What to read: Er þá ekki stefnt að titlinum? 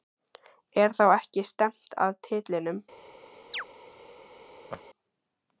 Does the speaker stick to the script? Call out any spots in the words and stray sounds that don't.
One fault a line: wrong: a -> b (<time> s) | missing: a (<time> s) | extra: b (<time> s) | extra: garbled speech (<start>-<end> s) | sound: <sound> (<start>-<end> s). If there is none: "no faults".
sound: chirp (3.5-3.7 s)
sound: laugh (4.7-4.8 s)